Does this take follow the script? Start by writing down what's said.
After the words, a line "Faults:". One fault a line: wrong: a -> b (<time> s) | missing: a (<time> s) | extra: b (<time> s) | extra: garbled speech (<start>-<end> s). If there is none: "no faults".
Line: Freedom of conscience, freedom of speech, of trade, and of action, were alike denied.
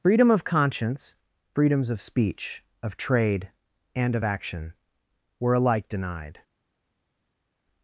Freedom of conscience, freedoms of speech, of trade, and of action, were alike denied.
Faults:
wrong: freedom -> freedoms (1.5 s)